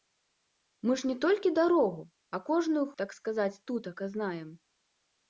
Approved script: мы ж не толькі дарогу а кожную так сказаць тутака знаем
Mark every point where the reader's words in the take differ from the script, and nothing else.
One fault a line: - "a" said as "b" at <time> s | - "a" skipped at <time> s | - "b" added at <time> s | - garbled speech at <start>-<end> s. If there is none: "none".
none